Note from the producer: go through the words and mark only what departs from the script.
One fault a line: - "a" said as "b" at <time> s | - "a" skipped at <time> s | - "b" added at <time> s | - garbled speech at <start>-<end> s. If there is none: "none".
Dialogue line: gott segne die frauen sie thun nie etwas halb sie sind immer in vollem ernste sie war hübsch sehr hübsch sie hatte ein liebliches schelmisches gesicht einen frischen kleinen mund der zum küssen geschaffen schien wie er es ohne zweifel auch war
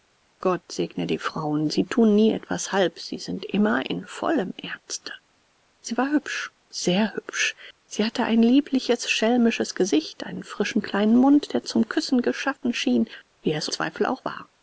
- "ohne" skipped at 13.7 s